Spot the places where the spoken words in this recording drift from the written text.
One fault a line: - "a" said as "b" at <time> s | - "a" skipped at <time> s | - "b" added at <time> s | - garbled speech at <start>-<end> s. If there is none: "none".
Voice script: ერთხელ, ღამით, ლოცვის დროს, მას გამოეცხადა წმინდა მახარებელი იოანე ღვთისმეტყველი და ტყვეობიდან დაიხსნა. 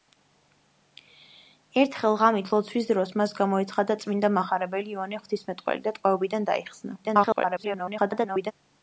- garbled speech at 7.0-8.5 s